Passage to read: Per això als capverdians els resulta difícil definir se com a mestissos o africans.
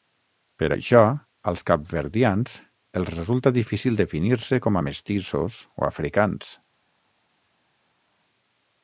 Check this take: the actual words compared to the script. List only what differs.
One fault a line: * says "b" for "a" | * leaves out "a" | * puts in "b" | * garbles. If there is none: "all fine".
all fine